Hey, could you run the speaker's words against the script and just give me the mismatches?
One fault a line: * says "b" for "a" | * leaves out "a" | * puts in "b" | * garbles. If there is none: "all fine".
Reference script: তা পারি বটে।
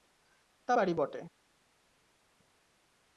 all fine